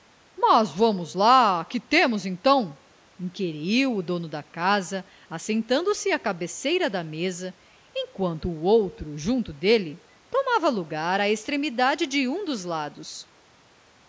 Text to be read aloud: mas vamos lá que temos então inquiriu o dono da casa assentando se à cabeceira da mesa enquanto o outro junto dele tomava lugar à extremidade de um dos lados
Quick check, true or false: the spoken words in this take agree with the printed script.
true